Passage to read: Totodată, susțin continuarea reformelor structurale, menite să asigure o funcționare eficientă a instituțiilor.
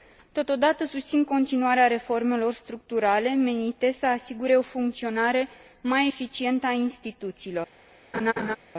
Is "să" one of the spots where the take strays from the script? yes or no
no